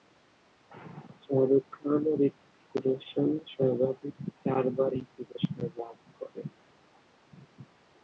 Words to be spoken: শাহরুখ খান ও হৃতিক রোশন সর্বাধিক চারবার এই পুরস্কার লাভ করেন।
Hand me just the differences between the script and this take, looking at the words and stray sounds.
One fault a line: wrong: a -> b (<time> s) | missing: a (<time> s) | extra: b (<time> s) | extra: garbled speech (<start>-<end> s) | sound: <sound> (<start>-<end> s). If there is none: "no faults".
no faults